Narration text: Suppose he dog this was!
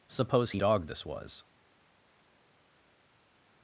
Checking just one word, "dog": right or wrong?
right